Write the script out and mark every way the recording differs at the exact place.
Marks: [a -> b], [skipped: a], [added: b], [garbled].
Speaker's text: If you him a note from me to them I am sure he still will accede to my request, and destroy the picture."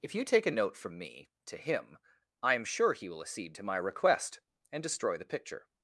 If you [him -> take] a note from me to [them -> him] I am sure he [skipped: still] will accede to my request, and destroy the picture."